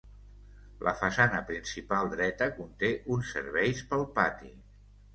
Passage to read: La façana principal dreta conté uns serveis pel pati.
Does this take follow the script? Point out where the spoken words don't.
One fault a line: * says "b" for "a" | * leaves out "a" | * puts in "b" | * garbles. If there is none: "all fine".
all fine